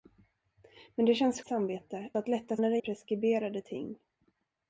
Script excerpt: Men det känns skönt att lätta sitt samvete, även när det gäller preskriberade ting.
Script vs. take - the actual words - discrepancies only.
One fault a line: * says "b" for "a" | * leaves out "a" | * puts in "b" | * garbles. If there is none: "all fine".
* says "samvete" for "skönt"
* leaves out "sitt samvete även"
* leaves out "gäller"